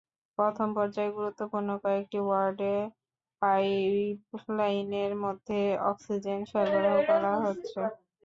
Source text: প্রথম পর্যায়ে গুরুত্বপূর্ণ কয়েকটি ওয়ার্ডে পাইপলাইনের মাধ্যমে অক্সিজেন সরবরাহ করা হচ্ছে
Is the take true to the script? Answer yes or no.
yes